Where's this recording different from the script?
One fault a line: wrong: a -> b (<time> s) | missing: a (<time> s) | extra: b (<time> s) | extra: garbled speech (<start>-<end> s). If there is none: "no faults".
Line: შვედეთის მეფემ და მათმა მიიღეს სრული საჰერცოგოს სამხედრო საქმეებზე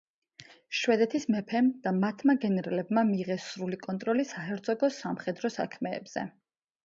extra: გენერლებმა (2.4 s)
extra: კონტროლი (3.9 s)